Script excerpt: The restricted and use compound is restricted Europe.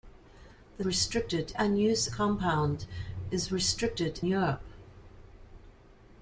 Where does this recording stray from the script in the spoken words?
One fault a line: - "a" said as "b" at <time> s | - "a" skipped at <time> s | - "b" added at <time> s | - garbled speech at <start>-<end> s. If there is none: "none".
none